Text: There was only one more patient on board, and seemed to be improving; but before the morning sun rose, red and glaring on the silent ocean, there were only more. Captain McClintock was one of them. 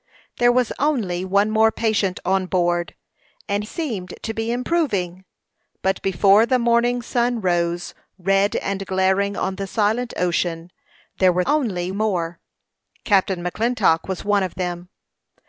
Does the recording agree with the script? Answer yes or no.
yes